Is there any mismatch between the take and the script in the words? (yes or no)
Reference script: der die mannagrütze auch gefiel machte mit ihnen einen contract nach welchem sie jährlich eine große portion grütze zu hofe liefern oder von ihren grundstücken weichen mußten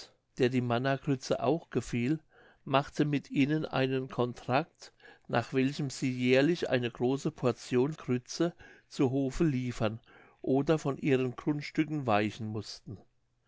no